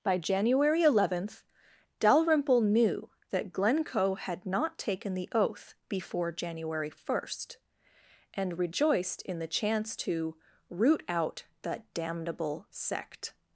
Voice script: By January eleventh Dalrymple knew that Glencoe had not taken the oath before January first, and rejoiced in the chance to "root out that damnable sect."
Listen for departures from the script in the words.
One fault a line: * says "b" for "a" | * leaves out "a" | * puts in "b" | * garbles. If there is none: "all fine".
all fine